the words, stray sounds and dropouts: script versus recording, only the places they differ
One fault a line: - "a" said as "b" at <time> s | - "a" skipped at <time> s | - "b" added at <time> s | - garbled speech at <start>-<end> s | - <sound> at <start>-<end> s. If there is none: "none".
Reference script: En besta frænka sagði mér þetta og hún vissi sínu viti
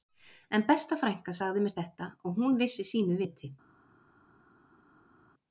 none